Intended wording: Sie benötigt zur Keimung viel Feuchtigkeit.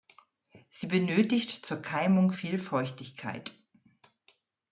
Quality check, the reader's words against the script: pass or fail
pass